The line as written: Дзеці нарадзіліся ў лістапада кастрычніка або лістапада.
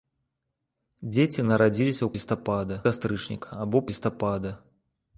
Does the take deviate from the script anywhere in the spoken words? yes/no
no